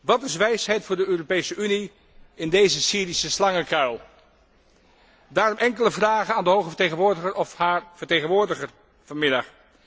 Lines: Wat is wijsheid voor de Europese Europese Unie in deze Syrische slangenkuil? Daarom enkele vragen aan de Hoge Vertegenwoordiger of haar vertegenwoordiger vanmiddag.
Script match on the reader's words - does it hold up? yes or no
no